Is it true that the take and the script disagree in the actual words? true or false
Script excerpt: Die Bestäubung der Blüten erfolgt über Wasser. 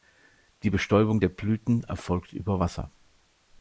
false